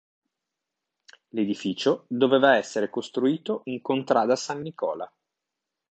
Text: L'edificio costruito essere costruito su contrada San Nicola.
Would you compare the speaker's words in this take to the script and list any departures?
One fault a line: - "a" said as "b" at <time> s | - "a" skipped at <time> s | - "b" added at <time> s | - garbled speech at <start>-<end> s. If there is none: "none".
- "costruito" said as "doveva" at 2.1 s
- "su" said as "in" at 3.6 s